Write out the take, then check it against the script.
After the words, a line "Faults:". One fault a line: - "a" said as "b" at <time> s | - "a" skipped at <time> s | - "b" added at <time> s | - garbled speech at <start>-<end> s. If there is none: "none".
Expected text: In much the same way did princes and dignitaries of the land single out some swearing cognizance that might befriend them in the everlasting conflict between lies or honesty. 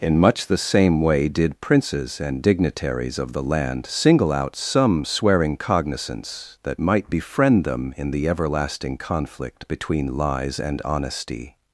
In much the same way did princes and dignitaries of the land single out some swearing cognizance that might befriend them in the everlasting conflict between lies and honesty.
Faults:
- "or" said as "and" at 10.6 s